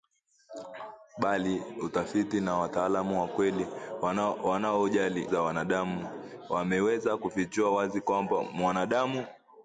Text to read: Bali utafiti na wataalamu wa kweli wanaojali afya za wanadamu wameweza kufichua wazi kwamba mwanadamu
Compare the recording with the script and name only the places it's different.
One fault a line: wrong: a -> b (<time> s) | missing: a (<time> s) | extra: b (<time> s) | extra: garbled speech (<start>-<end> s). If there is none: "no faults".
missing: afya (5.3 s)